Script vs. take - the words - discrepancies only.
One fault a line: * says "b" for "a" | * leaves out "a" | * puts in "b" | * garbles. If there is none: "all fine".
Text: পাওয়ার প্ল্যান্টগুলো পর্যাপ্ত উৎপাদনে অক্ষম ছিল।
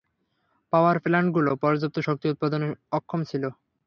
* puts in "শক্তি"